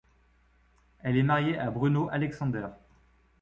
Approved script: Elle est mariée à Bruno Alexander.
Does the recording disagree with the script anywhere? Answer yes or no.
no